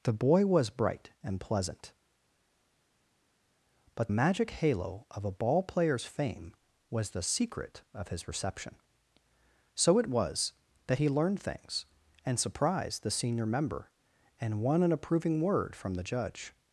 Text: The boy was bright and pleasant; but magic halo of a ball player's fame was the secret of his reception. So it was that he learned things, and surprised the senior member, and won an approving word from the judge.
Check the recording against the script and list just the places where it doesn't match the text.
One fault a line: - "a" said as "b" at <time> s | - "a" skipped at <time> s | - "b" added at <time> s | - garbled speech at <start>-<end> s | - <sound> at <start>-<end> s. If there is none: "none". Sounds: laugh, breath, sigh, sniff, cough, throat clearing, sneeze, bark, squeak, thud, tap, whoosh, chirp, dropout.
none